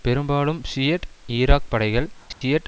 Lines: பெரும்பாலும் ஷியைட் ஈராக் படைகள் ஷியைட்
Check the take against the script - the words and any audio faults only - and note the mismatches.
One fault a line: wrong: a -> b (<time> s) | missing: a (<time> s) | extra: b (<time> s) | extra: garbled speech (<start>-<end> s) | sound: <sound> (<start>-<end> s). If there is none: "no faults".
sound: dropout (2.3-2.4 s)